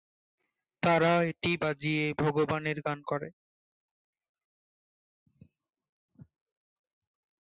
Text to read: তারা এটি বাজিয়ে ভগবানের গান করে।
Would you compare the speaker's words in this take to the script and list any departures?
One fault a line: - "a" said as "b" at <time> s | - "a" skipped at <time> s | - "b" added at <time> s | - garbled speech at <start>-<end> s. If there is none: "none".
none